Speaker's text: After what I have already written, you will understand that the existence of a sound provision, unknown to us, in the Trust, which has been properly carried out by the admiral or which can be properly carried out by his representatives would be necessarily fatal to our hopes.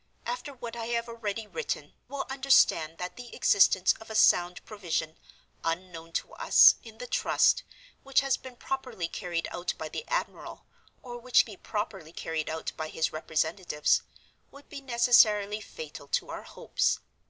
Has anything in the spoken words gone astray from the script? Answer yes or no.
yes